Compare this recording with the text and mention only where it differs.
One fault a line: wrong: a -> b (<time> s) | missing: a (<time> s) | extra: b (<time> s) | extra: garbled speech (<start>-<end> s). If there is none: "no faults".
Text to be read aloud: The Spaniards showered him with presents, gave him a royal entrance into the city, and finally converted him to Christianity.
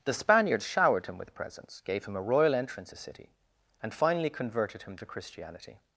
missing: into (2.9 s)